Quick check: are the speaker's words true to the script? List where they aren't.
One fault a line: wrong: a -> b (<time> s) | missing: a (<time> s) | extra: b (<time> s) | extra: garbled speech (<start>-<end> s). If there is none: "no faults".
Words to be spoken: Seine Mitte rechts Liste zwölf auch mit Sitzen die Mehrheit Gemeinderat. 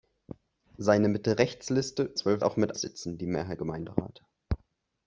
no faults